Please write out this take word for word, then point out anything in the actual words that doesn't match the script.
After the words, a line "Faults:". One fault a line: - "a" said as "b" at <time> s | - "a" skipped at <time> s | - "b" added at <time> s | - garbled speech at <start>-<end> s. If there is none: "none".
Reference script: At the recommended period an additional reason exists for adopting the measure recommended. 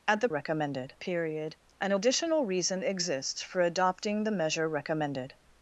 At the recommended period an additional reason exists for adopting the measure recommended.
Faults:
none